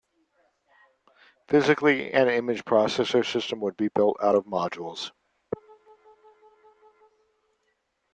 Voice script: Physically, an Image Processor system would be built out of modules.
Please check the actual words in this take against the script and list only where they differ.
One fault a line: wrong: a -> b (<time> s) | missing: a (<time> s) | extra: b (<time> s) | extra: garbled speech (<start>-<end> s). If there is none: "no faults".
no faults